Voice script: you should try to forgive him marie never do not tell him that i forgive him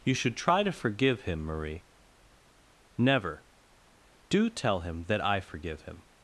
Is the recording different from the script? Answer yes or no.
yes